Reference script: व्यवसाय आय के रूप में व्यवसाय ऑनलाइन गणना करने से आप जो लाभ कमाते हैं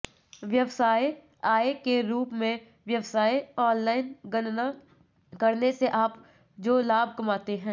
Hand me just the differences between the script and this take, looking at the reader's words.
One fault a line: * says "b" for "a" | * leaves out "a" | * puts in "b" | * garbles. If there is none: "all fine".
all fine